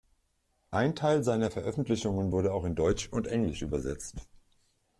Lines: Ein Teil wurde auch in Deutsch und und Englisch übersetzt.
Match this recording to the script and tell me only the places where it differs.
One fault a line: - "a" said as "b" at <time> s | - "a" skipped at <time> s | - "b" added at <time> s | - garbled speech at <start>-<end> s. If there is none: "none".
- "seiner Veröffentlichungen" added at 1.2 s
- "und" skipped at 3.3 s